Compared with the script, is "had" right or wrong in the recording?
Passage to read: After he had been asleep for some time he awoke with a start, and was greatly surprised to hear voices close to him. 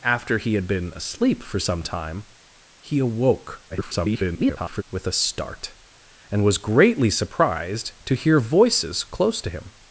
right